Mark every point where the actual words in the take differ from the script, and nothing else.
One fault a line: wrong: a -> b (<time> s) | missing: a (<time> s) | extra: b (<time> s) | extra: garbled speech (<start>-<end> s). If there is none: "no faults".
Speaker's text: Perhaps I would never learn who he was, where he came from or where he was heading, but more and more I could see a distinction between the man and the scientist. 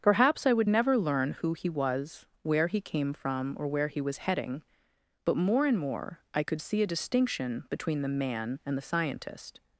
no faults